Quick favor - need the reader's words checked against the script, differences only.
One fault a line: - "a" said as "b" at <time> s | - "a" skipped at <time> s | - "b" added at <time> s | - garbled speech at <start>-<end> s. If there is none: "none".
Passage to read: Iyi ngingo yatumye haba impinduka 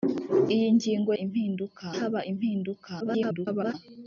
- "yatumye" said as "impinduka" at 1.2 s
- garbled speech at 3.0-3.7 s